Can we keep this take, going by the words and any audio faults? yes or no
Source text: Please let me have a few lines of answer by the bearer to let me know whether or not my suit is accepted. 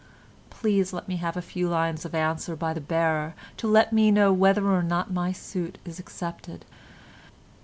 yes